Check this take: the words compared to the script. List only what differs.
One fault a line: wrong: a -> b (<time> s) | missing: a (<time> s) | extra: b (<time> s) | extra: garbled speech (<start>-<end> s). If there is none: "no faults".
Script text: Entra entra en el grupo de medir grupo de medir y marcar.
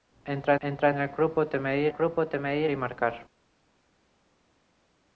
no faults